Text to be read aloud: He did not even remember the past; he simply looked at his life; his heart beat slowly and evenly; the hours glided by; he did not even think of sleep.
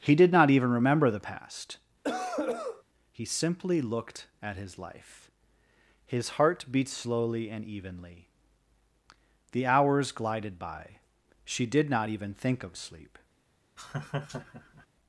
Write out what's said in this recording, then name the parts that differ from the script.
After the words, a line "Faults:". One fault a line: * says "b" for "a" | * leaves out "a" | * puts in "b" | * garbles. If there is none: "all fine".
He did not even remember the past; he simply looked at his life; his heart beat slowly and evenly; the hours glided by; she did not even think of sleep.
Faults:
* says "she" for "he"